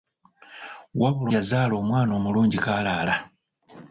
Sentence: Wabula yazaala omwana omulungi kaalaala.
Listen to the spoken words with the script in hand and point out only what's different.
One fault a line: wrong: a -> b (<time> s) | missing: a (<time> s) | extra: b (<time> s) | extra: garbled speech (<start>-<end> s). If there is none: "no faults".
no faults